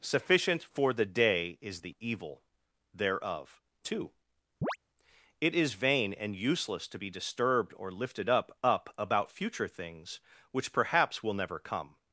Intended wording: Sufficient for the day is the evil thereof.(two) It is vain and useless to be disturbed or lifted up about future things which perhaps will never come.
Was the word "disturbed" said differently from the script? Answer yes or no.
no